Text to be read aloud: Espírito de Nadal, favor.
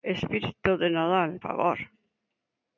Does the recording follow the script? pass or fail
pass